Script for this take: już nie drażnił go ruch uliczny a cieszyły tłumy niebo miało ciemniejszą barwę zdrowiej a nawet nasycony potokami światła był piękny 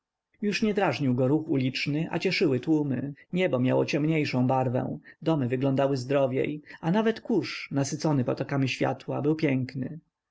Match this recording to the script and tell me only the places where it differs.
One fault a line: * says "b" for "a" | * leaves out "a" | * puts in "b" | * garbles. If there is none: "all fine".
* puts in "domy wyglądały"
* puts in "kurz"